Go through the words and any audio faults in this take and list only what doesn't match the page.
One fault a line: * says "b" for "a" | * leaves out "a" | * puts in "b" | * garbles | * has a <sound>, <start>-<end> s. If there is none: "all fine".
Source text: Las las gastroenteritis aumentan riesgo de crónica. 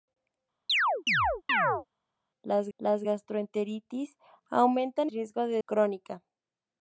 * has a chirp, 0.7-1.9 s